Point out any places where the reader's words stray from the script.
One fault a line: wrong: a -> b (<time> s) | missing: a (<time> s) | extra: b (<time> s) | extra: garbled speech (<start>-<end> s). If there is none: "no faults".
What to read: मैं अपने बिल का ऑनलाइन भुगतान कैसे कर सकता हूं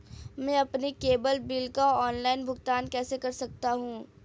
extra: केबल (0.9 s)